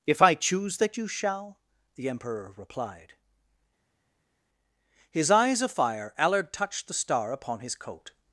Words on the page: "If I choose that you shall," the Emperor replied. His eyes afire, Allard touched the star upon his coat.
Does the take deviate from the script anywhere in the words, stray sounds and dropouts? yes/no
yes